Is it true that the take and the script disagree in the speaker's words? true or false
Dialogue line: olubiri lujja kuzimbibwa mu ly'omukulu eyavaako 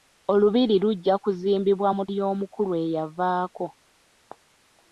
false